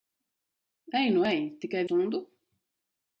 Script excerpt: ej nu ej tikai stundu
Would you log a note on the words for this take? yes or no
no